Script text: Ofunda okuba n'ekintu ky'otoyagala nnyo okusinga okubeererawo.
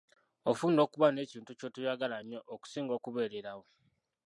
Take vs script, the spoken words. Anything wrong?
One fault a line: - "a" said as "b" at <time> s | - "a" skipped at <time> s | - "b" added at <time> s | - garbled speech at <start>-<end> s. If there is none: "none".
none